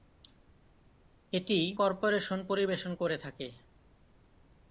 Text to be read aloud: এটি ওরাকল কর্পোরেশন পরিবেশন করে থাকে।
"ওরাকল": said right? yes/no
no